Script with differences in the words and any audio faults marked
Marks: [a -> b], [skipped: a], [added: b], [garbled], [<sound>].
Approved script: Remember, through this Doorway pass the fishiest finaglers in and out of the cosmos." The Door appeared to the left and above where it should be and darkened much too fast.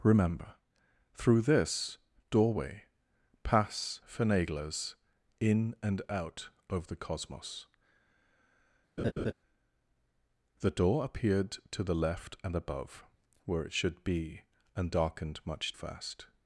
Remember, through this Doorway pass [skipped: the fishiest] finaglers in and out of the cosmos." [laugh] The Door appeared to the left and above where it should be and darkened much [skipped: too] fast.